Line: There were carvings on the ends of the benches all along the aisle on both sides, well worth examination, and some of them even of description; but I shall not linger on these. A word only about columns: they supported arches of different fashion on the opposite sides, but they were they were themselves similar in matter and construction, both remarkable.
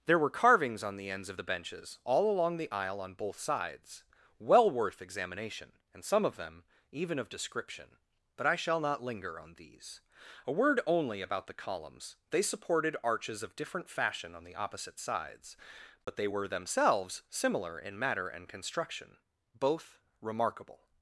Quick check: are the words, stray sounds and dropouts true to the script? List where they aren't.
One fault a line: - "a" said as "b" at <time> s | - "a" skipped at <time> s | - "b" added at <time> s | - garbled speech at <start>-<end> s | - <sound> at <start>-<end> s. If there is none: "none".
- "the" added at 11.5 s
- dropout at 16.0-16.1 s
- "they were" skipped at 16.5 s